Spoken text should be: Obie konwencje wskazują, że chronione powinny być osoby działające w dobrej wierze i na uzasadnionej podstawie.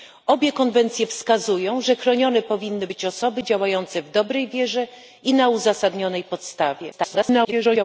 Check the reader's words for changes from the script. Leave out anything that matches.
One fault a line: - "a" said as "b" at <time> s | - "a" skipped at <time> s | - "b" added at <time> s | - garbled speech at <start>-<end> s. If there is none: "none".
- garbled speech at 6.9-7.8 s